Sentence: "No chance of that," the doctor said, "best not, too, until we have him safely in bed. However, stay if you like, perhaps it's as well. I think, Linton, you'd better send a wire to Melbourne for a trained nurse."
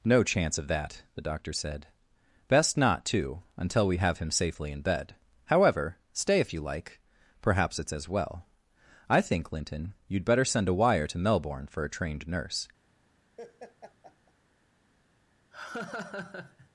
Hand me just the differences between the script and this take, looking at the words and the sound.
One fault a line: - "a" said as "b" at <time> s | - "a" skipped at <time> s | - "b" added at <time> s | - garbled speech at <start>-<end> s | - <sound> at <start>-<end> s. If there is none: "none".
- laugh at 13.4-14.3 s
- laugh at 15.5-16.7 s